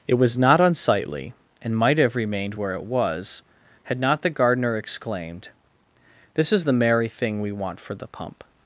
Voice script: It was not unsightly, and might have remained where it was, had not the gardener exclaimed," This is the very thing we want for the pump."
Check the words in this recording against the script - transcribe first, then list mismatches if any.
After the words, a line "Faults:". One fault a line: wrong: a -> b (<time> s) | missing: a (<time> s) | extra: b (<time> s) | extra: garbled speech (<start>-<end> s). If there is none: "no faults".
It was not unsightly, and might have remained where it was, had not the gardener exclaimed," This is the merry thing we want for the pump."
Faults:
wrong: very -> merry (6.7 s)